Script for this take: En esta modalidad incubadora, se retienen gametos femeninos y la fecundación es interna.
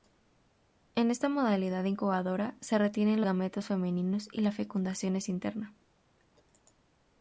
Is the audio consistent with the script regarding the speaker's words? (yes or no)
yes